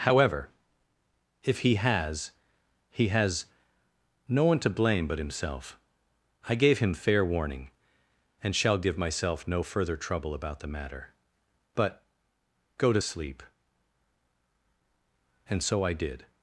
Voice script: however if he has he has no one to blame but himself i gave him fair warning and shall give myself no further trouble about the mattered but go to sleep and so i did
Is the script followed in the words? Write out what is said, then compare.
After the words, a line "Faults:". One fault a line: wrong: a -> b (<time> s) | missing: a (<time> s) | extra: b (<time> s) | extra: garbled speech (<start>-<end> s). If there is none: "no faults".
however if he has he has no one to blame but himself i gave him fair warning and shall give myself no further trouble about the matter but go to sleep and so i did
Faults:
wrong: mattered -> matter (10.7 s)